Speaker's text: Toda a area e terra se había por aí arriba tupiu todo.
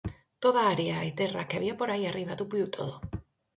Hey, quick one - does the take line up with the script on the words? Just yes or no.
no